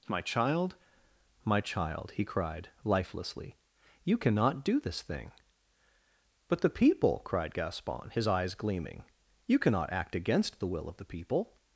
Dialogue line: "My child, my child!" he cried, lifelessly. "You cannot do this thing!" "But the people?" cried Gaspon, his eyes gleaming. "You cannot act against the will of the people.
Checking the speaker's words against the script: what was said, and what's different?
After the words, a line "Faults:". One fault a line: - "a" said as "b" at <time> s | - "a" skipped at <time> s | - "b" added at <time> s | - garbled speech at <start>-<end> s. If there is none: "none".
"My child, my child!" he cried, lifelessly. "You cannot do this thing!" "But the people?" cried Gaspon, his eyes gleaming. "You cannot act against the will of the people.
Faults:
none